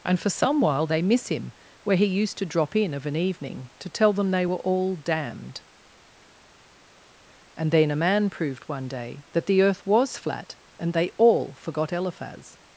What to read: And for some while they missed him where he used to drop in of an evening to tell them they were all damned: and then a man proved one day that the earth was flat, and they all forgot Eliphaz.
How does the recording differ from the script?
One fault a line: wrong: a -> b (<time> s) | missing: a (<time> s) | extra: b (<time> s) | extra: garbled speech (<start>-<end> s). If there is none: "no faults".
wrong: missed -> miss (1.0 s)